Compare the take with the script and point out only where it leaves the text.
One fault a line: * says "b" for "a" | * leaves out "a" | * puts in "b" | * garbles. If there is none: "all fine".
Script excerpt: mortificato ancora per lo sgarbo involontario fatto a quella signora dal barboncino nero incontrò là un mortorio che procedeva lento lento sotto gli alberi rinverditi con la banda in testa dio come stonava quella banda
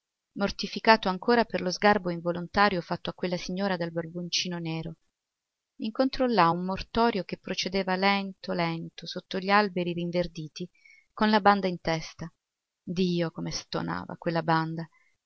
all fine